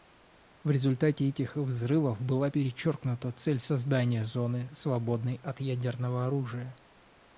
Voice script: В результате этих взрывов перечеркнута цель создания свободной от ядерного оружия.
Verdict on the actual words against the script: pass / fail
fail